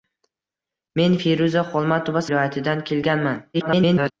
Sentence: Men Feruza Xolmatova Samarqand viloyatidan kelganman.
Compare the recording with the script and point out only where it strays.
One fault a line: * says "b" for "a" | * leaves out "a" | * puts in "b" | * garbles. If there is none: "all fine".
* leaves out "Samarqand"
* garbles